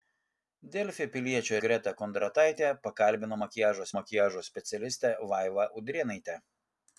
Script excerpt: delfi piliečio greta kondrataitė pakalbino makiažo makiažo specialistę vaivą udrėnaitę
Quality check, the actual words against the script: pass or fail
pass